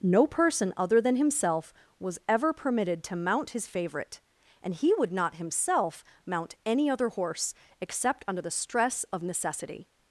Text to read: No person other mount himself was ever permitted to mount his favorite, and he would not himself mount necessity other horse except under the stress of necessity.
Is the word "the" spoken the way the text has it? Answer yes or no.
yes